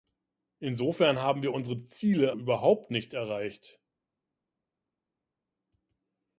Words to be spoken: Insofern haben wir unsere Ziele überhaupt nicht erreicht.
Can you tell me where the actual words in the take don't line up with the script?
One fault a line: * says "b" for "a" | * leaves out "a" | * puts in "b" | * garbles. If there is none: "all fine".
all fine